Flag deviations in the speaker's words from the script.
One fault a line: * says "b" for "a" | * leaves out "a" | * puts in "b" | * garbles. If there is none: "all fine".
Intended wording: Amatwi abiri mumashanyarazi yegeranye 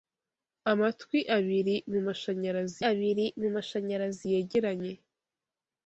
* puts in "abiri mumashanyarazi"